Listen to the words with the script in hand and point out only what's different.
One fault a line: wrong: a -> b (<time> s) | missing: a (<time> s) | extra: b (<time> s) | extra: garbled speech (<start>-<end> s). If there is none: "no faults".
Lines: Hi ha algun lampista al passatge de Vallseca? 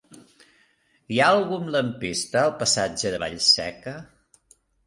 no faults